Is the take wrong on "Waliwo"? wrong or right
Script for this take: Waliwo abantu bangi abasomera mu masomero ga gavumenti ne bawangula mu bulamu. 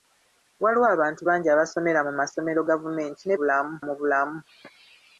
right